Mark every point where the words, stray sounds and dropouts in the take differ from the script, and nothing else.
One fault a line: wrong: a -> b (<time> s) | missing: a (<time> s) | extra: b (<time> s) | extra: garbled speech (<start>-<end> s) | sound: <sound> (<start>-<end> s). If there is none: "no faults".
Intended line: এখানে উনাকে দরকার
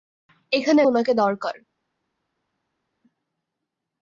no faults